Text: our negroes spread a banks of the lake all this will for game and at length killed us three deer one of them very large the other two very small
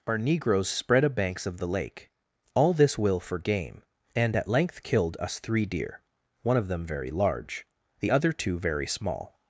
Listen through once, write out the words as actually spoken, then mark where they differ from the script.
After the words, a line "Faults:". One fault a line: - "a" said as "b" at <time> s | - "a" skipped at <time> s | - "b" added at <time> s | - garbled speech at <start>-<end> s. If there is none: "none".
our negroes spread a banks of the lake all this will for game and at length killed us three deer one of them very large the other two very small
Faults:
none